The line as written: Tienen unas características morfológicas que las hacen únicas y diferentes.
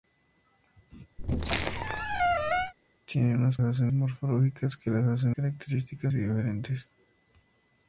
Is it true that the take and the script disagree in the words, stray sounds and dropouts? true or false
true